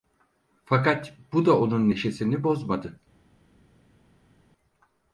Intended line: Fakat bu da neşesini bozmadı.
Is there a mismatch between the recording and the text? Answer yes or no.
yes